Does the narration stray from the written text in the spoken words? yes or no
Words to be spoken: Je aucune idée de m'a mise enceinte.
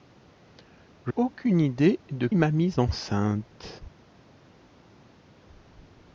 no